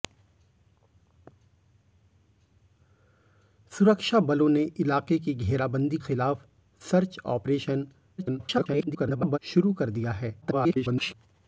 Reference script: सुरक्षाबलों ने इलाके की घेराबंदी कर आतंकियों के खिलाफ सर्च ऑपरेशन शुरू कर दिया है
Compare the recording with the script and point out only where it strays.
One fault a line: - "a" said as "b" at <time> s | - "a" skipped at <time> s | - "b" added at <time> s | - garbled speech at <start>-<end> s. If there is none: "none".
- "कर आतंकियों के" skipped at 6.0 s
- garbled speech at 8.2-9.4 s
- garbled speech at 10.4-11.1 s